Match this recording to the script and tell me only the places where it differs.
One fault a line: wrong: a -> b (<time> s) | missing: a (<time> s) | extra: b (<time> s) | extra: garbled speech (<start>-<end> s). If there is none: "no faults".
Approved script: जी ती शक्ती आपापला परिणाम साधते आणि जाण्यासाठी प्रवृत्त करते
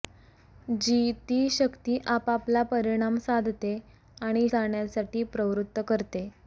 no faults